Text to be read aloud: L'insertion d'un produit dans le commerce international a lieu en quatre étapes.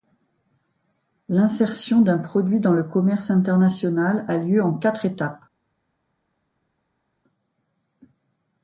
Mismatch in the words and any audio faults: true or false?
false